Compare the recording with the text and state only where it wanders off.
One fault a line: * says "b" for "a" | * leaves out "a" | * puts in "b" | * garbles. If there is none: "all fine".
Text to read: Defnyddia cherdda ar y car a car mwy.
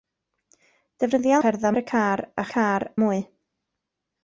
all fine